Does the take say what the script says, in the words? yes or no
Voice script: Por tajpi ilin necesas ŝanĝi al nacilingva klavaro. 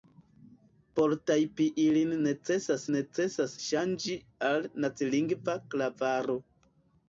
no